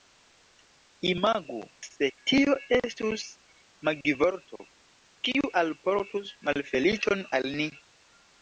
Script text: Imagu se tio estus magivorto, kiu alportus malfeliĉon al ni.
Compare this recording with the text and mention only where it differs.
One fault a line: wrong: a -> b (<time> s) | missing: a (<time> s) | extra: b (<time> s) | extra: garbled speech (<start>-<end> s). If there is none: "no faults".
no faults